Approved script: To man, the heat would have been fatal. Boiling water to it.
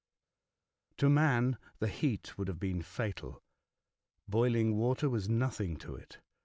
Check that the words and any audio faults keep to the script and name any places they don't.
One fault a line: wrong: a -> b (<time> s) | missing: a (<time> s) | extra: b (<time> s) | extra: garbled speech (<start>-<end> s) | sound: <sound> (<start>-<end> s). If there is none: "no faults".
extra: was nothing (5.1 s)